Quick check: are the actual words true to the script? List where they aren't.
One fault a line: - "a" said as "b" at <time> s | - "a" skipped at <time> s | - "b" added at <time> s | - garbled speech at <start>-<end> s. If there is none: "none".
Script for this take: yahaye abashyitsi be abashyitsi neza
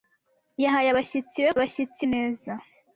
none